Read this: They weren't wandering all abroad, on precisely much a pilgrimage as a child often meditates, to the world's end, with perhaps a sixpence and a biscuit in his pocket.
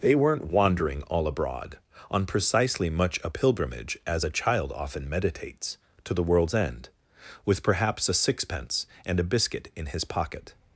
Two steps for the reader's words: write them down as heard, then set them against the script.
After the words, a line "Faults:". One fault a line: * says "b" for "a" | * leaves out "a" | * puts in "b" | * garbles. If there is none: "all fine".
They weren't wandering all abroad, on precisely much a pilgrimage as a child often meditates, to the world's end, with perhaps a sixpence and a biscuit in his pocket.
Faults:
all fine